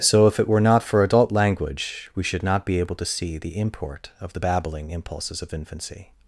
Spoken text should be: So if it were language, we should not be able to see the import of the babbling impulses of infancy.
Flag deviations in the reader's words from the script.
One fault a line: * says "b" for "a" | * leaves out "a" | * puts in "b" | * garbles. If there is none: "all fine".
* puts in "not for adult"